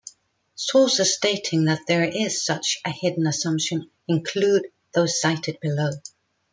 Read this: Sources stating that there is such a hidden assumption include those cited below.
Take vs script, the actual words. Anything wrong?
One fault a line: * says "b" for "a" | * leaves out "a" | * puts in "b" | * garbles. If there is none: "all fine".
all fine